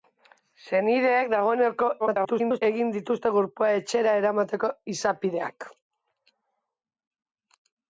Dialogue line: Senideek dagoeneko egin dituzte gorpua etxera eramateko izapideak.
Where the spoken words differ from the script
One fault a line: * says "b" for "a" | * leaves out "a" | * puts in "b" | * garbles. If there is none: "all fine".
* garbles